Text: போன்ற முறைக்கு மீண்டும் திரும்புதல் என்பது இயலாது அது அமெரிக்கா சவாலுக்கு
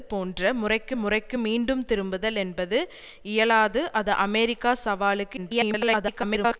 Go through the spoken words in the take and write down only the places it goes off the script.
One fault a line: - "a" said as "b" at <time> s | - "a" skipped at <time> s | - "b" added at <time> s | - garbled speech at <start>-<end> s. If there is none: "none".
- "முறைக்கு" added at 0.9 s
- garbled speech at 5.4-6.6 s